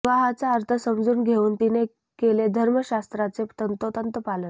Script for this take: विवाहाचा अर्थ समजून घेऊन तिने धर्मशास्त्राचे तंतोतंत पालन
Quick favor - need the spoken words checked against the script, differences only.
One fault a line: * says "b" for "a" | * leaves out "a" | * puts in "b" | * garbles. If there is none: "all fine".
* puts in "केले"